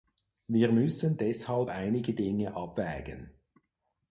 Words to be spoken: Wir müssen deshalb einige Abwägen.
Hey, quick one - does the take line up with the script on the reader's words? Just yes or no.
no